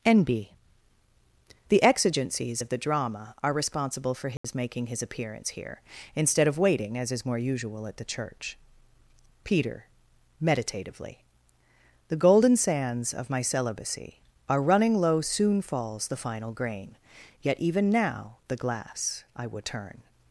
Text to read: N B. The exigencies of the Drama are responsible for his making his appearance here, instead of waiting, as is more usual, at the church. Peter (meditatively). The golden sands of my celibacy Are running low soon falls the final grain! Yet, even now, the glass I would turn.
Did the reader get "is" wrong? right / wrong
right